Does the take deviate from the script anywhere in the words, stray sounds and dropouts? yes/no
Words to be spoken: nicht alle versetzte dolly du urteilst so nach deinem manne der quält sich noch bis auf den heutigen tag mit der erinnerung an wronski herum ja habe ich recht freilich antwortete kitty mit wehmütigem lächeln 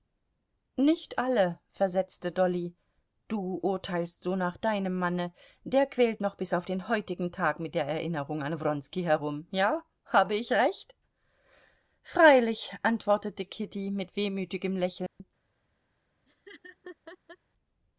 yes